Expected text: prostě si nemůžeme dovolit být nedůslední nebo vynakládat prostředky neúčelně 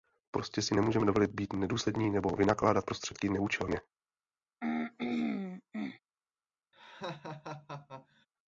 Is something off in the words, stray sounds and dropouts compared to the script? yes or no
yes